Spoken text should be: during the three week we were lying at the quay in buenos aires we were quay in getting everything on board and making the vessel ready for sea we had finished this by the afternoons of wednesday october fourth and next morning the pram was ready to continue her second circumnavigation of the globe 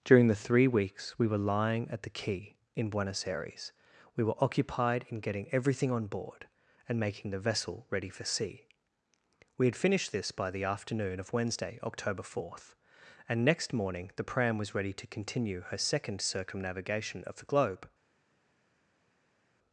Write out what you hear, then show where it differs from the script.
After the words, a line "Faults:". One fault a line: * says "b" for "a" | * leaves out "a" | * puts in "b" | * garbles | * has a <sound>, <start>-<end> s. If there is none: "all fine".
during the three weeks we were lying at the quay in buenos aires we were occupied in getting everything on board and making the vessel ready for sea we had finished this by the afternoon of wednesday october fourth and next morning the pram was ready to continue her second circumnavigation of the globe
Faults:
* says "weeks" for "week"
* says "occupied" for "quay"
* says "afternoon" for "afternoons"